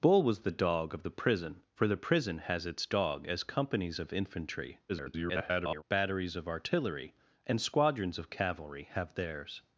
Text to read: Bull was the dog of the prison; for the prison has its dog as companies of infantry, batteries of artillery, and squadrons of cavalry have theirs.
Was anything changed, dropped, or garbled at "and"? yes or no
no